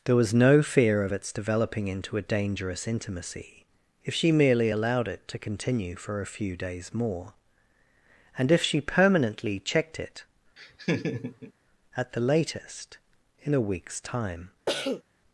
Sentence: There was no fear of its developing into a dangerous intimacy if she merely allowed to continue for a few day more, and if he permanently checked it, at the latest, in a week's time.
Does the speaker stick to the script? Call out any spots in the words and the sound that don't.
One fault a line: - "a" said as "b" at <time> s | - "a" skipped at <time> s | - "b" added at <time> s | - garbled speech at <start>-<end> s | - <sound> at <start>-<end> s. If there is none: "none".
- "it" added at 5.1 s
- "day" said as "days" at 6.6 s
- "he" said as "she" at 8.6 s
- laugh at 10.6-11.5 s
- cough at 14.7-15.0 s